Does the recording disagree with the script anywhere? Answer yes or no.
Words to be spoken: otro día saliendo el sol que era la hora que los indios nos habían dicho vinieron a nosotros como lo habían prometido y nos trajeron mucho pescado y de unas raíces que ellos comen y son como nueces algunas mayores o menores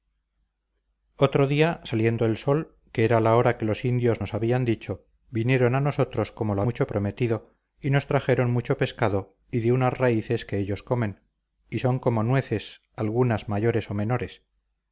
yes